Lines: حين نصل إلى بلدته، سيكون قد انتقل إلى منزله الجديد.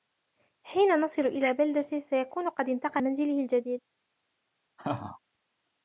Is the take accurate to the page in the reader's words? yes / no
no